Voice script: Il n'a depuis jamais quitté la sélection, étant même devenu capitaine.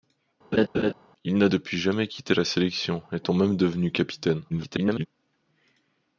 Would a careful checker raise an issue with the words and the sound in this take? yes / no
yes